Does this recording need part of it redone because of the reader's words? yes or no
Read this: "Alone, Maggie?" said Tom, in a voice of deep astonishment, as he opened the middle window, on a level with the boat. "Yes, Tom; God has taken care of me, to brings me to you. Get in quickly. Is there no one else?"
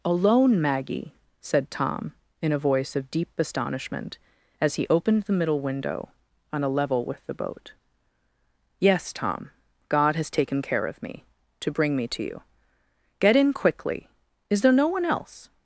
yes